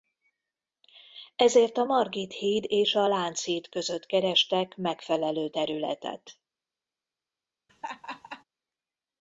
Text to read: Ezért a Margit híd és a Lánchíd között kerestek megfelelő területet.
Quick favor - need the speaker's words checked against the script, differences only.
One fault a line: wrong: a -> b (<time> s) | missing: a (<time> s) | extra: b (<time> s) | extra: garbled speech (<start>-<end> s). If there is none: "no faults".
no faults